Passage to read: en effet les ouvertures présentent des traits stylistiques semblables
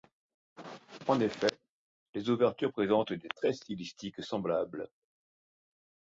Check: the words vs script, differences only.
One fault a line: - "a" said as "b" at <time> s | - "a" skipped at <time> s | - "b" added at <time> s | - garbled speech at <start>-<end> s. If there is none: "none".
none